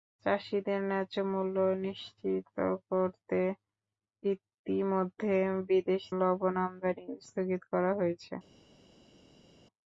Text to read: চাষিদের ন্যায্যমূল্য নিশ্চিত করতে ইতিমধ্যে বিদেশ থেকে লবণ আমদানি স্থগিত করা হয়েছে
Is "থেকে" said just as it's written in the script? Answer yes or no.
no